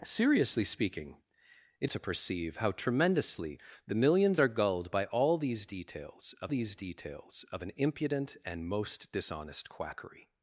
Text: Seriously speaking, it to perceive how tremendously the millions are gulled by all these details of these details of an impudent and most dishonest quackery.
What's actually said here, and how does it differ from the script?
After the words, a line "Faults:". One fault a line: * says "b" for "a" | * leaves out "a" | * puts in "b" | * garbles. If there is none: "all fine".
Seriously speaking, it to perceive how tremendously the millions are gulled by all these details of these details of an impudent and most dishonest quackery.
Faults:
all fine